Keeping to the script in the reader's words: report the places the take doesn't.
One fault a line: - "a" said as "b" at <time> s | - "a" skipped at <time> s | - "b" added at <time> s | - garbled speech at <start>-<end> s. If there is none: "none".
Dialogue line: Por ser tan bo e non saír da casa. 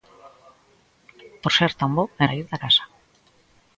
- "non" skipped at 2.2 s